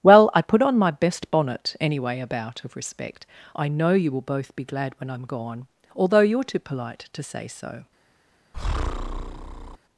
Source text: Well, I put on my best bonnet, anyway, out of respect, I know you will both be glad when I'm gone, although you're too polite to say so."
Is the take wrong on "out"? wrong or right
wrong